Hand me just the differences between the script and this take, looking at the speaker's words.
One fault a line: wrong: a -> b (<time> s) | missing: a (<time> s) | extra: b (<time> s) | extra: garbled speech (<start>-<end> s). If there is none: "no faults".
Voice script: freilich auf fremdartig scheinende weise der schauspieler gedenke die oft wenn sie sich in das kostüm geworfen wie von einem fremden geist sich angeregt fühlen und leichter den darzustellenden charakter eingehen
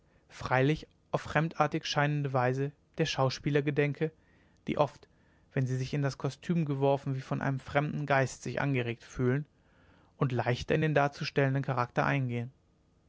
extra: in (10.7 s)